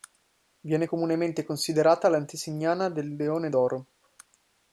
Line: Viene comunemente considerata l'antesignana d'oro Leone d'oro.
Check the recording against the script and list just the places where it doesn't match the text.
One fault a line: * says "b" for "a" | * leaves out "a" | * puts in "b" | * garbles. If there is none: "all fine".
* says "del" for "d'oro"